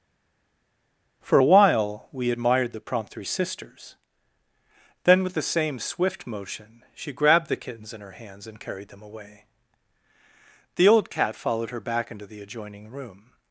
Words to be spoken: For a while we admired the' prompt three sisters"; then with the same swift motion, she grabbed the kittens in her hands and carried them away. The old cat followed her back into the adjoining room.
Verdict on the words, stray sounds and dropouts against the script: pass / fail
pass